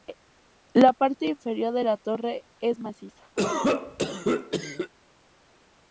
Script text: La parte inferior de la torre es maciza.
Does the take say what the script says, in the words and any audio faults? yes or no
no